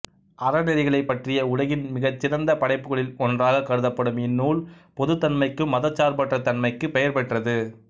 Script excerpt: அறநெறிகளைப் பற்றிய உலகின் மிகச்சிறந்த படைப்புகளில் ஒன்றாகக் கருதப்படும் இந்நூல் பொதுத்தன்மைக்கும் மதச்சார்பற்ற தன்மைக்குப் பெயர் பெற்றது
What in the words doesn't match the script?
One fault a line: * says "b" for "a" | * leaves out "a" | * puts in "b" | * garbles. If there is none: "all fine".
all fine